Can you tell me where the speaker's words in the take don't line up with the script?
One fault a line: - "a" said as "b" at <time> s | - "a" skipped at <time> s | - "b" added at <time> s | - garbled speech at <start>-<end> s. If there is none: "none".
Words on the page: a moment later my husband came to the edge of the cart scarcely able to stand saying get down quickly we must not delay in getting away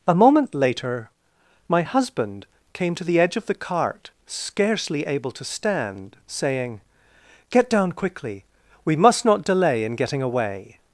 none